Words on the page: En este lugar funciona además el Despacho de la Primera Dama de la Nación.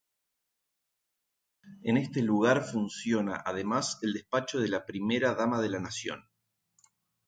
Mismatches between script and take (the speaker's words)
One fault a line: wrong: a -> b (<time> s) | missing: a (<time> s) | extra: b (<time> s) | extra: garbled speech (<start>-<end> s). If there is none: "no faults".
no faults